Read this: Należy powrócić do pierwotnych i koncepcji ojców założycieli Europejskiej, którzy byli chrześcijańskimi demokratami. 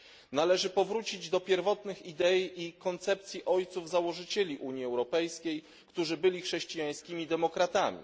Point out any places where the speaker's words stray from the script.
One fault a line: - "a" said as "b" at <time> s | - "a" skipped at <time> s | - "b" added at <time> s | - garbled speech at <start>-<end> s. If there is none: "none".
- "idei" added at 2.0 s
- "Unii" added at 4.6 s